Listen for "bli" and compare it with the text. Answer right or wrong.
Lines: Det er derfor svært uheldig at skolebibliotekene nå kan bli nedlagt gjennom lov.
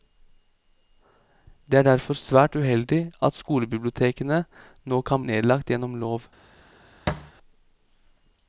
wrong